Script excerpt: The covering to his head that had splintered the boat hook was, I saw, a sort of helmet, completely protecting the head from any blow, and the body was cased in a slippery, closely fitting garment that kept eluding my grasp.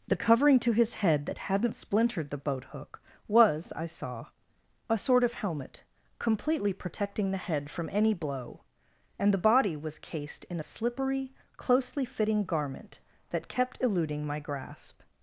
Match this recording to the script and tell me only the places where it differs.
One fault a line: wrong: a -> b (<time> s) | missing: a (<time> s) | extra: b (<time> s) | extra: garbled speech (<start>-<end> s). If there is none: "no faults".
wrong: had -> hadn't (1.4 s)